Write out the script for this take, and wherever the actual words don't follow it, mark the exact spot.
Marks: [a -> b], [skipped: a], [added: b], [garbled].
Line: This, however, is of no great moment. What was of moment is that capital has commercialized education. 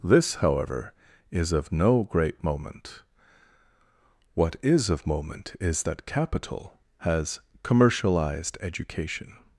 This, however, is of no great moment. What [was -> is] of moment is that capital has commercialized education.